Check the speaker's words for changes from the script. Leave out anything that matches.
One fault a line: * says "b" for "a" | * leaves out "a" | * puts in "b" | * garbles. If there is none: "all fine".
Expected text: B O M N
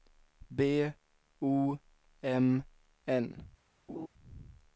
all fine